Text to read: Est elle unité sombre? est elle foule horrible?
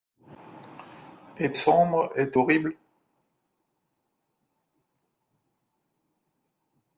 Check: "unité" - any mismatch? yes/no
yes